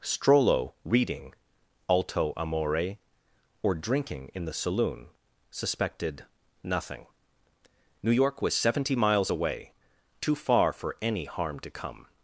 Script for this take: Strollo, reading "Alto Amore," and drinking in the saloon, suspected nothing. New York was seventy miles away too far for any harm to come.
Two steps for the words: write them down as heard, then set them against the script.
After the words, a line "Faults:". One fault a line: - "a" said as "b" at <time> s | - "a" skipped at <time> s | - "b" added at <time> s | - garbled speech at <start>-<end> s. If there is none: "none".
Strollo, reading "Alto Amore," or drinking in the saloon, suspected nothing. New York was seventy miles away too far for any harm to come.
Faults:
- "and" said as "or" at 3.6 s